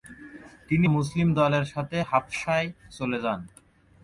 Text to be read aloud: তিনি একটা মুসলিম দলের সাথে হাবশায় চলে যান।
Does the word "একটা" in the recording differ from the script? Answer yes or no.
yes